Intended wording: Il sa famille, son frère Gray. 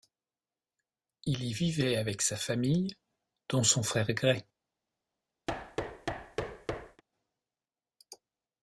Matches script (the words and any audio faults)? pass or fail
fail